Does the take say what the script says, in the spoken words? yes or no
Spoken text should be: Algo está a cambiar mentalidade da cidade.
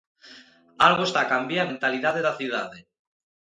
yes